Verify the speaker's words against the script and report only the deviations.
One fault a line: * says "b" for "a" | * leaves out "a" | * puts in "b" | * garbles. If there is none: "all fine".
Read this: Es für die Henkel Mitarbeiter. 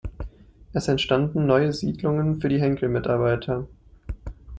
* puts in "entstanden neue Siedlungen"